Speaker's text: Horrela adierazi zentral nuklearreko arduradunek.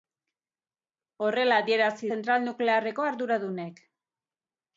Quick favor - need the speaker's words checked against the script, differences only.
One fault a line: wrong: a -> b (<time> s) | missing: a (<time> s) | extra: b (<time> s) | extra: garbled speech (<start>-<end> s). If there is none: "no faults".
no faults